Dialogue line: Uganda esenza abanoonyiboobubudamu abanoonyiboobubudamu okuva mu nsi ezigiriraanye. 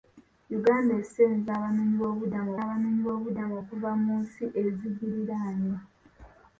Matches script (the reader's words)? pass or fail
pass